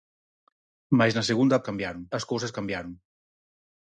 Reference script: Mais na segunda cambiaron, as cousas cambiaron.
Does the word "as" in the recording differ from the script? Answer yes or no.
no